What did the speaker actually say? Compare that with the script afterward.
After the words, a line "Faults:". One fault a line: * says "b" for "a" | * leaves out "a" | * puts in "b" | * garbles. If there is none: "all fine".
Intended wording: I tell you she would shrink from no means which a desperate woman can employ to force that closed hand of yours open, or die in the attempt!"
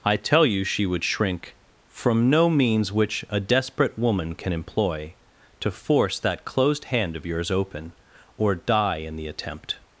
I tell you she would shrink from no means which a desperate woman can employ to force that closed hand of yours open, or die in the attempt!"
Faults:
all fine